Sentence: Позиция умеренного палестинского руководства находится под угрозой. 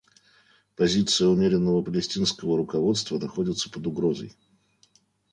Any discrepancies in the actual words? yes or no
no